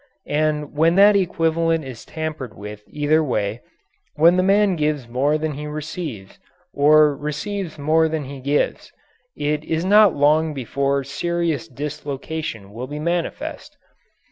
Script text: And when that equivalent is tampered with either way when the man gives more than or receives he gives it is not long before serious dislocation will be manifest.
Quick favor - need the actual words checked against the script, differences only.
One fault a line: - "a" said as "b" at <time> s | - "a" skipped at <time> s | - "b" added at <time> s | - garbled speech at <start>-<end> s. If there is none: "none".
- "he receives" added at 5.5 s
- "more than" added at 7.8 s